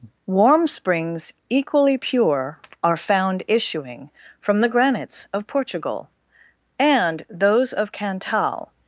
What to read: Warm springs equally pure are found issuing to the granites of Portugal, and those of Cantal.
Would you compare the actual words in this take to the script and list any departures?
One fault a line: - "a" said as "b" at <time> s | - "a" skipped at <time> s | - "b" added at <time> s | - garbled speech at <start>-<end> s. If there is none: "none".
- "to" said as "from" at 4.4 s